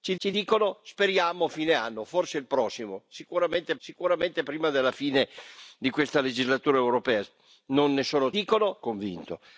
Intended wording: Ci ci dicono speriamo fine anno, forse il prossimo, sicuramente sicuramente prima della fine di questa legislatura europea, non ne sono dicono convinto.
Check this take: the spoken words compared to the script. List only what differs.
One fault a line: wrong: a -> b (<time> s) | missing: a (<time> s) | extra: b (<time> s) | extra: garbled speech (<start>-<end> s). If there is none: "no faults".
no faults